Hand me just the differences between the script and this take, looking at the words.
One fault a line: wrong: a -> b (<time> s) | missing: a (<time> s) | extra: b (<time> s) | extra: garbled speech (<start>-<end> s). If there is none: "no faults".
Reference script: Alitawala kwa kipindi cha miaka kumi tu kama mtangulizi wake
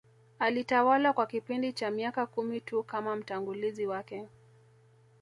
no faults